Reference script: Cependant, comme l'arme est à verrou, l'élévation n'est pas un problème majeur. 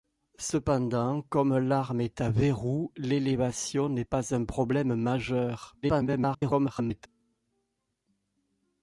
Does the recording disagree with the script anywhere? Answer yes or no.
yes